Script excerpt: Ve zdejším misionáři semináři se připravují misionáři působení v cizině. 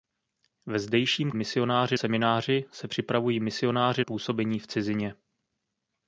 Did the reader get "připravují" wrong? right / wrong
right